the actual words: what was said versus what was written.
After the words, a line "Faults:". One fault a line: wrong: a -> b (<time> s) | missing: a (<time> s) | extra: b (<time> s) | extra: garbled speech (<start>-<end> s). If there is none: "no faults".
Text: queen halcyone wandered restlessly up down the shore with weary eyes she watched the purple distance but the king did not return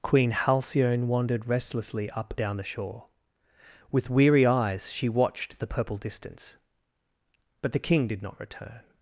queen halcyone wandered restlessly up down the shore with weary eyes she watched the purple distance but the king did not return
Faults:
no faults